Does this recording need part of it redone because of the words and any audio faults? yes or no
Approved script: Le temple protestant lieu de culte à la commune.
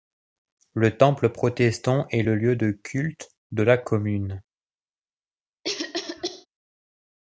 yes